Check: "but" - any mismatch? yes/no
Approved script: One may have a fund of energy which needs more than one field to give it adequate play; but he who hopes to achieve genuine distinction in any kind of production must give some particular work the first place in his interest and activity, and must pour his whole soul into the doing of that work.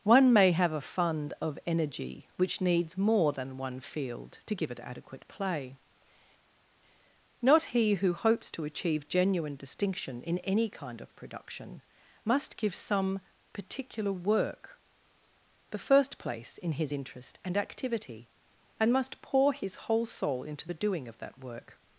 yes